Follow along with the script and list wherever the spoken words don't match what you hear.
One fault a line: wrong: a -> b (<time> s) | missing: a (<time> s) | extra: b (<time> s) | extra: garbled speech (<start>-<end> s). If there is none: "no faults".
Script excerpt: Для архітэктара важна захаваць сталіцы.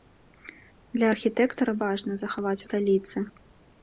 no faults